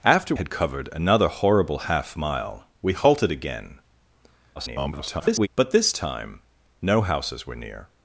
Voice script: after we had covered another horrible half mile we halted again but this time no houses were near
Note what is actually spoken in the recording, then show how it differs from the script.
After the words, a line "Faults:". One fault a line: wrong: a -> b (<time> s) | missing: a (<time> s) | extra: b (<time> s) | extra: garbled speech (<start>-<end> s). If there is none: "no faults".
after had covered another horrible half mile we halted again [garbled] but this time no houses were near
Faults:
missing: we (0.3 s)
extra: garbled speech (4.6-5.5 s)